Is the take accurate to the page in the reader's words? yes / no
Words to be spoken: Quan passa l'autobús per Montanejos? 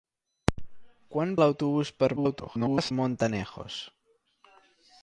no